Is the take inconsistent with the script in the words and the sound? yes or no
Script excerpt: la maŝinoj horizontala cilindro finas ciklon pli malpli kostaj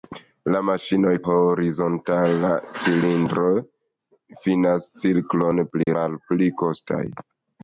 yes